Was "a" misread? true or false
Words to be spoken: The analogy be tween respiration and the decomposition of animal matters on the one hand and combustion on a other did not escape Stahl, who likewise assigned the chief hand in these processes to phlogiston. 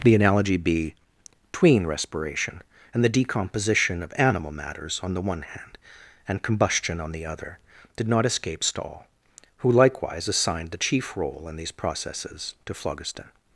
true